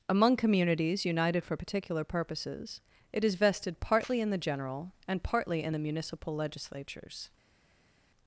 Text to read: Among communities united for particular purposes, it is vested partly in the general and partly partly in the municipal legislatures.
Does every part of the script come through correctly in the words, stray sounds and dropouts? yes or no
no